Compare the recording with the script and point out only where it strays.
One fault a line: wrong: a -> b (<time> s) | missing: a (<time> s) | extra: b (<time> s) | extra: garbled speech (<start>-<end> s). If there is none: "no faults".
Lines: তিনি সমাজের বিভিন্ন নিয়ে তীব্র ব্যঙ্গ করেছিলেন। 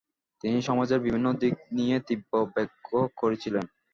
extra: দিক (1.4 s)